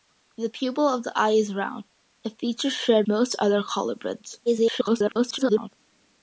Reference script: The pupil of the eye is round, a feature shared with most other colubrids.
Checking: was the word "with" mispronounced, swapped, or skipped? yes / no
yes